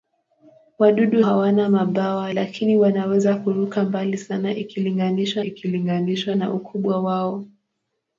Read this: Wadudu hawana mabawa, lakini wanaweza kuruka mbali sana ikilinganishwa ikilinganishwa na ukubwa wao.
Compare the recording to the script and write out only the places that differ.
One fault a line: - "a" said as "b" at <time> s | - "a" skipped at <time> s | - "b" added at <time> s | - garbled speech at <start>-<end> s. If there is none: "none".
none